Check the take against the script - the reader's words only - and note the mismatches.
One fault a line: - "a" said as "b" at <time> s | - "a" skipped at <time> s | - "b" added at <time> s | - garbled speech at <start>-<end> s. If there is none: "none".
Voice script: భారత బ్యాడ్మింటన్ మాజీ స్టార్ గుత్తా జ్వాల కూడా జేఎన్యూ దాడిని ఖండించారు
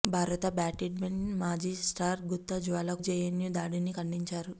- "కూడా" skipped at 2.9 s